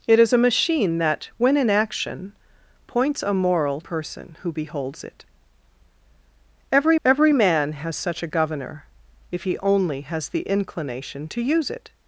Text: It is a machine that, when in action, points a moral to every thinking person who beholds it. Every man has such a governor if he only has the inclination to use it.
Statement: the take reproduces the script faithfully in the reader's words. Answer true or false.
false